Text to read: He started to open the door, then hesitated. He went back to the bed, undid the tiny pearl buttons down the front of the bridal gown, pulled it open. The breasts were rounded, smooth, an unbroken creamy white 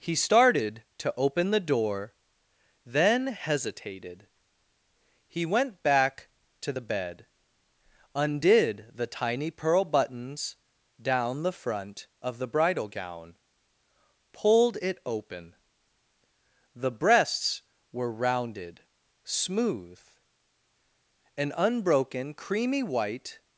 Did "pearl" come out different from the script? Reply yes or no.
no